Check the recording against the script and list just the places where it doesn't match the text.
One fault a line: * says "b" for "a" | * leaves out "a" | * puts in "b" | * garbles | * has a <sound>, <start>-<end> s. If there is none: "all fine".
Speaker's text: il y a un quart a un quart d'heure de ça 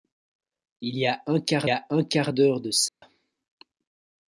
* has a dropout, 2.9-3.0 s